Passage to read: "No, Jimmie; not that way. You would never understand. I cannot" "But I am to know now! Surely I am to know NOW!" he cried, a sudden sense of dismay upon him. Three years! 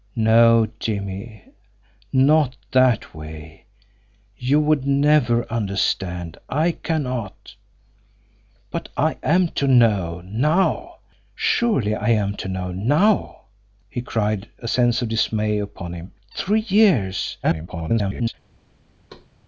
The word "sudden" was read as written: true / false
false